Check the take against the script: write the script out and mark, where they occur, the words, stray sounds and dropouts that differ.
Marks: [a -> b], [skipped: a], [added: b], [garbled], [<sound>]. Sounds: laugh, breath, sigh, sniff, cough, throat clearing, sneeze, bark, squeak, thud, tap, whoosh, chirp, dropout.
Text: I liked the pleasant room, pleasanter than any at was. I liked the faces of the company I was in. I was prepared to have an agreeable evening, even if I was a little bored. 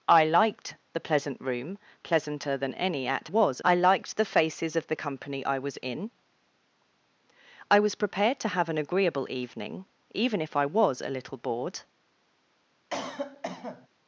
I liked the pleasant room, pleasanter than any at was. I liked the faces of the company I was in. I was prepared to have an agreeable evening, even if I was a little bored. [cough]